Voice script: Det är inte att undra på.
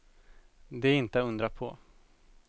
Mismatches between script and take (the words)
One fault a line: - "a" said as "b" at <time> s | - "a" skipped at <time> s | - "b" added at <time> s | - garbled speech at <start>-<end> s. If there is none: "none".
none